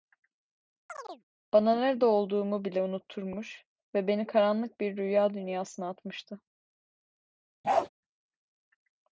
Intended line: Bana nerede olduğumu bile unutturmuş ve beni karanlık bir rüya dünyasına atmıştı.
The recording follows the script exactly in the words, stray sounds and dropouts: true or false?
false